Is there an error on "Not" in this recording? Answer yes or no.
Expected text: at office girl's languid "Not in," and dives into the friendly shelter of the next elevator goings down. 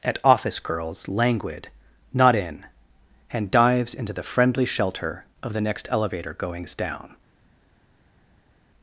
no